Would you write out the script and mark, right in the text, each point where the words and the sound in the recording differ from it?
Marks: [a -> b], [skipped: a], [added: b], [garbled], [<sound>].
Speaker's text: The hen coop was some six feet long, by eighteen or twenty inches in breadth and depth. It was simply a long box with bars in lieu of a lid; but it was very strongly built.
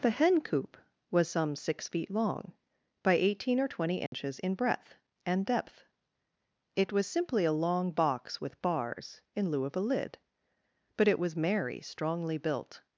The hen coop was some six feet long, by eighteen or twenty inches [dropout] in breadth and depth. It was simply a long box with bars in lieu of a lid; but it was [very -> merry] strongly built.